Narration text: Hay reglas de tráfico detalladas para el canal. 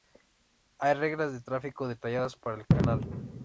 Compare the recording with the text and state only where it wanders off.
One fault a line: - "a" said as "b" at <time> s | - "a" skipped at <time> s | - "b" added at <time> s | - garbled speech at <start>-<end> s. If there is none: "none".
none